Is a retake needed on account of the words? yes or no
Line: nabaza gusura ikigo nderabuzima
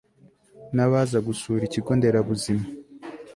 no